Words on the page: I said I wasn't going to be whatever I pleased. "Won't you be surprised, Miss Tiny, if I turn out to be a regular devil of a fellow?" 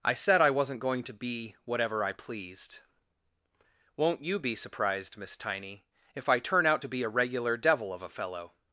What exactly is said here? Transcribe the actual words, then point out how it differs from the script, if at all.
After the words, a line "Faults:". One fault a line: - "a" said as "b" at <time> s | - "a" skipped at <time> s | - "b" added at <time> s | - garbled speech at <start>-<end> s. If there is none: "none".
I said I wasn't going to be whatever I pleased. "Won't you be surprised, Miss Tiny, if I turn out to be a regular devil of a fellow?"
Faults:
none